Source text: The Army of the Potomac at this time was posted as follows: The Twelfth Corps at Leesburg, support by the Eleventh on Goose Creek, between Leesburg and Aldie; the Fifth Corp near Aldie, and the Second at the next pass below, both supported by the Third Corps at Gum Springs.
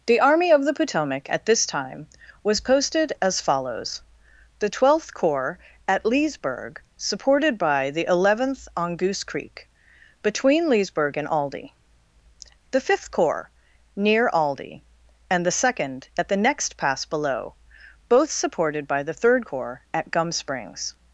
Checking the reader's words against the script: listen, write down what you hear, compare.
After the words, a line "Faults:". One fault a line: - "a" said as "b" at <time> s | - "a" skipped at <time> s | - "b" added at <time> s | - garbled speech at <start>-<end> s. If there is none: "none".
The Army of the Potomac at this time was posted as follows: The Twelfth Corps at Leesburg, supported by the Eleventh on Goose Creek, between Leesburg and Aldie; the Fifth Corps near Aldie, and the Second at the next pass below, both supported by the Third Corps at Gum Springs.
Faults:
- "support" said as "supported" at 7.0 s
- "Corp" said as "Corps" at 13.1 s